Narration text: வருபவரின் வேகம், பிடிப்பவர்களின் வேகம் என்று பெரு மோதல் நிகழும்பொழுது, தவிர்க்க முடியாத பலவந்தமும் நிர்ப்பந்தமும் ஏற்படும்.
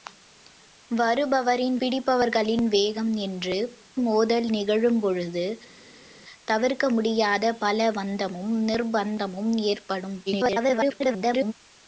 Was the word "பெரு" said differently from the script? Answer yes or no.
yes